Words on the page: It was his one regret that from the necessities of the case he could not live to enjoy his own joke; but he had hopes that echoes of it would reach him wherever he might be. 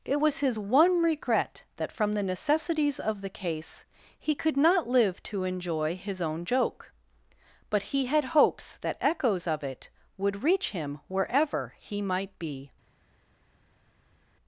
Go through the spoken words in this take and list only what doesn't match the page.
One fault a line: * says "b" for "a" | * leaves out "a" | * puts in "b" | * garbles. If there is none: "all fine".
all fine